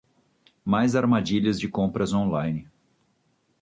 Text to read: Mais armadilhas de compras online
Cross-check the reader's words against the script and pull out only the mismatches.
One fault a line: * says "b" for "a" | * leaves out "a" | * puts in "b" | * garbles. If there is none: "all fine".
all fine